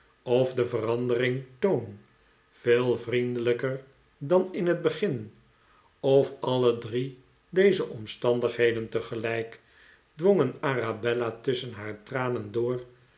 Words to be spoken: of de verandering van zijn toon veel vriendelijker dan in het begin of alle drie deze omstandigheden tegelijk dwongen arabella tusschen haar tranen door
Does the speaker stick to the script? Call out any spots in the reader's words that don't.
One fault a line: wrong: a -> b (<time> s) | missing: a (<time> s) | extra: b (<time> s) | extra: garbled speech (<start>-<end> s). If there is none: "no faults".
missing: van zijn (1.4 s)